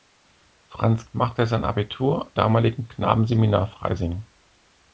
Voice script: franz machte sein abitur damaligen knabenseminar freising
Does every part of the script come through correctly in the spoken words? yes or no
yes